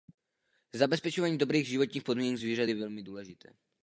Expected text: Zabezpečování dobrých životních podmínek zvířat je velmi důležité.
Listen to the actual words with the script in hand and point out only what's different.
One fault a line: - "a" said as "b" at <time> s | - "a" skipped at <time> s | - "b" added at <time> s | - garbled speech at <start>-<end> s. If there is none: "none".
none